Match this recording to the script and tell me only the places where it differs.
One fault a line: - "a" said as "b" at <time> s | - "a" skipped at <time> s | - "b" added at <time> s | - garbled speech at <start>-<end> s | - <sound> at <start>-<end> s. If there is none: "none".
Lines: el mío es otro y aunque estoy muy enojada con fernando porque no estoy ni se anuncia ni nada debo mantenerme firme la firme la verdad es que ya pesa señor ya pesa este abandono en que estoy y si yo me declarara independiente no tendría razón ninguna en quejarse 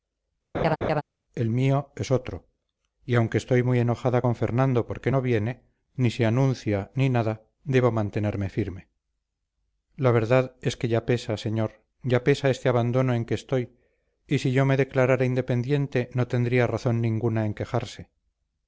- laugh at 0.5-1.0 s
- "estoy" said as "viene" at 5.2 s
- "firme la" skipped at 10.1 s